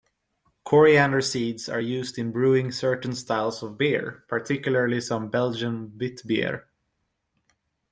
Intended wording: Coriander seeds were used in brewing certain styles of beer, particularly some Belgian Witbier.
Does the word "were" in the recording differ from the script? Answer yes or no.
yes